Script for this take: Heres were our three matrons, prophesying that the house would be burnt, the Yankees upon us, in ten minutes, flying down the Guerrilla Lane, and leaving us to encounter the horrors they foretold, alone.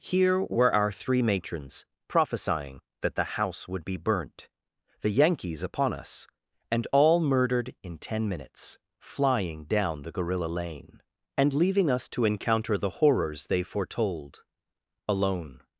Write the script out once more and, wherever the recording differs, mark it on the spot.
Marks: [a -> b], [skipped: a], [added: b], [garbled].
[Heres -> Here] were our three matrons, prophesying that the house would be burnt, the Yankees upon us, [added: and all murdered] in ten minutes, flying down the Guerrilla Lane, and leaving us to encounter the horrors they foretold, alone.